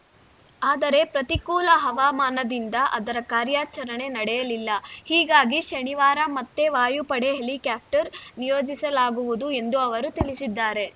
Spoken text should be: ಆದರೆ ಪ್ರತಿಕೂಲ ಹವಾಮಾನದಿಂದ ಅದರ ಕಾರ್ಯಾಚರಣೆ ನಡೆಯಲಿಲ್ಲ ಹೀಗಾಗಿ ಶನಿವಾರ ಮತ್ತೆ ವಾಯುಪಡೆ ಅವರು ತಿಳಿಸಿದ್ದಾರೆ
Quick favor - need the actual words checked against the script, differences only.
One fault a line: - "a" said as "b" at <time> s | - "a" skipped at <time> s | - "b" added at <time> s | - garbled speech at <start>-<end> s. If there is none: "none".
- "ಹೆಲಿಕಾಪ್ಟರ್ ನಿಯೋಜಿಸಲಾಗುವುದು ಎಂದು" added at 7.4 s